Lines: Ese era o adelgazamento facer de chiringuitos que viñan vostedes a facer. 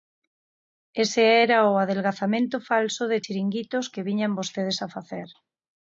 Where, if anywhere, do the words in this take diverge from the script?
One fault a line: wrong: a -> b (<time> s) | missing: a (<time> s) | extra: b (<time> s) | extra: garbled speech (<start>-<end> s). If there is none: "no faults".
wrong: facer -> falso (2.7 s)